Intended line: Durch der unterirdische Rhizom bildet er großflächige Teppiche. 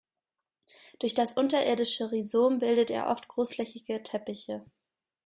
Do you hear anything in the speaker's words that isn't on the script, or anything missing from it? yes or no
yes